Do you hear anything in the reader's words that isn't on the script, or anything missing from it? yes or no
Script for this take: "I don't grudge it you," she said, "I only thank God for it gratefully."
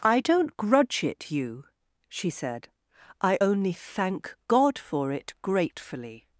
no